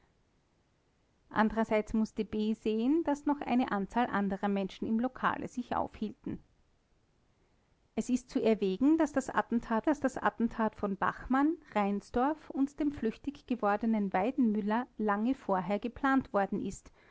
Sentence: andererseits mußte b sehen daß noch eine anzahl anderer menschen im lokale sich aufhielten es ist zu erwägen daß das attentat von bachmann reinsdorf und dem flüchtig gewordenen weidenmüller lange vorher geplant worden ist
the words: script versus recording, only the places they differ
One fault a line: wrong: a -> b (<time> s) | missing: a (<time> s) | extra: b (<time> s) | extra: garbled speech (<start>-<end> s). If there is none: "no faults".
extra: daß das attentat (9.8 s)